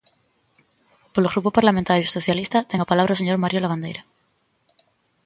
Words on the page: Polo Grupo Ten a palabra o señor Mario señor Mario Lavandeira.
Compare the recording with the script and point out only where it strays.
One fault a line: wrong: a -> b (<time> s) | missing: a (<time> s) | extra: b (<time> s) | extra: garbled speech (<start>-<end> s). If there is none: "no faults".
extra: Parlamentario Socialista (1.6 s)
missing: señor Mario (3.6 s)